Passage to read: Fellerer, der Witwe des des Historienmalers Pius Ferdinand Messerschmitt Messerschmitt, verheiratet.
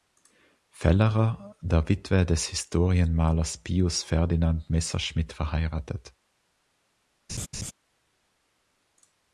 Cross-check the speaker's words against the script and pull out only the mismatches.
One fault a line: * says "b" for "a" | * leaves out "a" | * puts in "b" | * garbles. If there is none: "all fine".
* leaves out "des"
* leaves out "Messerschmitt"